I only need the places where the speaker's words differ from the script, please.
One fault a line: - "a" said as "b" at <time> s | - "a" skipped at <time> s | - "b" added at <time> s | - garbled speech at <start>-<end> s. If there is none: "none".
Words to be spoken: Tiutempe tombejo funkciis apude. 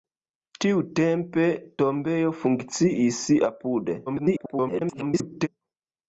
- garbled speech at 4.1-5.5 s